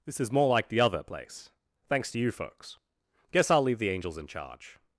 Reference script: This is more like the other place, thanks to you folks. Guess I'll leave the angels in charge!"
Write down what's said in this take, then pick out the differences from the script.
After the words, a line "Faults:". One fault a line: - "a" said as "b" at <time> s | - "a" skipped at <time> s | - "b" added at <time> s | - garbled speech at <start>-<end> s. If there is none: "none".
This is more like the other place, thanks to you folks. Guess I'll leave the angels in charge!"
Faults:
none